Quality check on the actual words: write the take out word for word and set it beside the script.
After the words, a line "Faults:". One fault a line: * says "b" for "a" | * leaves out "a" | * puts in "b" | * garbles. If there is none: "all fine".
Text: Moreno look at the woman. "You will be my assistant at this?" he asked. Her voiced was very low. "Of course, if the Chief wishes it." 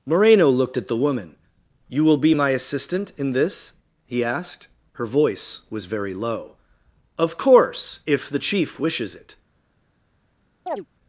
Moreno looked at the woman. "You will be my assistant in this?" he asked. Her voice was very low. "Of course, if the Chief wishes it."
Faults:
* says "looked" for "look"
* says "in" for "at"
* says "voice" for "voiced"